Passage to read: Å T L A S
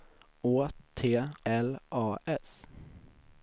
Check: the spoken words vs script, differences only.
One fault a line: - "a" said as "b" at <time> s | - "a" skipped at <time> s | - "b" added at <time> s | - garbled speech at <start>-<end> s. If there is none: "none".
none